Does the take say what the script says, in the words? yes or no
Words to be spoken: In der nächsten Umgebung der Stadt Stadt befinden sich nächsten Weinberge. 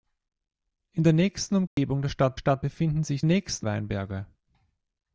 yes